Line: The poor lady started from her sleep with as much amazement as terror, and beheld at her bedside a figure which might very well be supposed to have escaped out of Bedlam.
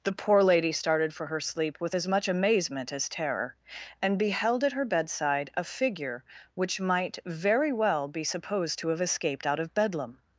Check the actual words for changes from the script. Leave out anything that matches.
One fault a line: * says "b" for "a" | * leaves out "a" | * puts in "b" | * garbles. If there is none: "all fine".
* says "for" for "from"